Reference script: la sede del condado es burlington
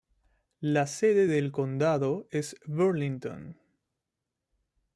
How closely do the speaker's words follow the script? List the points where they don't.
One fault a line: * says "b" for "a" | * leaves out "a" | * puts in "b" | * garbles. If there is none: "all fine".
all fine